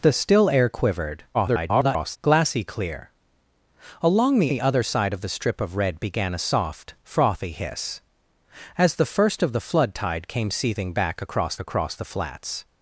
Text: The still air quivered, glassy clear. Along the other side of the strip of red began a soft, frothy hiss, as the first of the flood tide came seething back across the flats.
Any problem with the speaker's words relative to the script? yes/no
yes